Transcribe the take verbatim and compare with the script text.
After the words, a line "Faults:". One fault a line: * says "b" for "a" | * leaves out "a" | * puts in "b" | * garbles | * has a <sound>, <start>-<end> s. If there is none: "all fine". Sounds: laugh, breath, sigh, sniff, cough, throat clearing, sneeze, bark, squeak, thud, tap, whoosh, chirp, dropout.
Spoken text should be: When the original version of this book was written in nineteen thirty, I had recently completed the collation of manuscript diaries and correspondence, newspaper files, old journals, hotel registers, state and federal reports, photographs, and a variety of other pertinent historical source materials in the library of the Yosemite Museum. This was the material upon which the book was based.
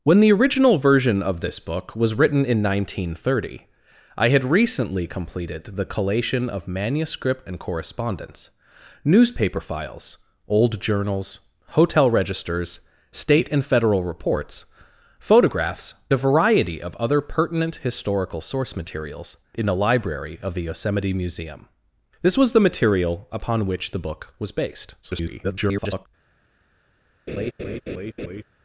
When the original version of this book was written in nineteen thirty, I had recently completed the collation of manuscript and correspondence, newspaper files, old journals, hotel registers, state and federal reports, photographs, a variety of other pertinent historical source materials in the library of the Yosemite Museum. This was the material upon which the book was based. [garbled]
Faults:
* leaves out "diaries"
* leaves out "and"
* garbles
* has a laugh, 27.3-28.4 s